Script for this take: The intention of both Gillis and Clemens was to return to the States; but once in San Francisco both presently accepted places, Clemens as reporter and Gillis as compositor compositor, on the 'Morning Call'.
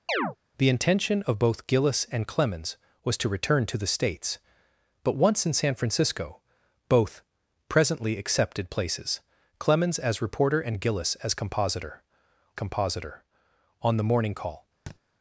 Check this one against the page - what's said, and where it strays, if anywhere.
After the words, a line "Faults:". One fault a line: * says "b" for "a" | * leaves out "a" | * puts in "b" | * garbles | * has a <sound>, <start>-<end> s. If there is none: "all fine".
The intention of both Gillis and Clemens was to return to the States; but once in San Francisco both presently accepted places, Clemens as reporter and Gillis as compositor compositor, on the 'Morning Call'.
Faults:
* has a chirp, 0.1-0.4 s
* has a thud, 14.9-15.0 s